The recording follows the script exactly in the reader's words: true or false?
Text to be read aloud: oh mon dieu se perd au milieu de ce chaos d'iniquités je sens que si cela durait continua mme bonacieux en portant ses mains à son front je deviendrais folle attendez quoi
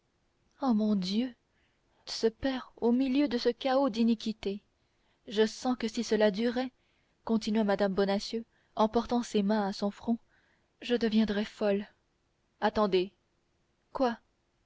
true